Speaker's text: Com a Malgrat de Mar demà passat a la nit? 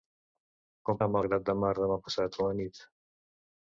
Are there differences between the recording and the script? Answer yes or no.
no